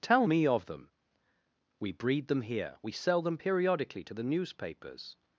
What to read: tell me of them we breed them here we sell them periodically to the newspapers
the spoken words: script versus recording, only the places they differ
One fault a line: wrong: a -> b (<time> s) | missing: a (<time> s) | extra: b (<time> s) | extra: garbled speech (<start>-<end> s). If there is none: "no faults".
no faults